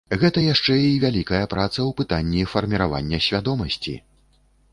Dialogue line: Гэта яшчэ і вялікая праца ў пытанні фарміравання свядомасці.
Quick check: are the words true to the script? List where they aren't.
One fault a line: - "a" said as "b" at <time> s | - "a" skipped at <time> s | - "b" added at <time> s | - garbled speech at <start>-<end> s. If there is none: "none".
none